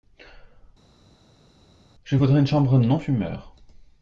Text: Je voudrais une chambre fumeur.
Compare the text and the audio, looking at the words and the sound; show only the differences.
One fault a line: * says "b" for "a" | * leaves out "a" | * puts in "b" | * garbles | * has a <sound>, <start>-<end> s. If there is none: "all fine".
* puts in "non"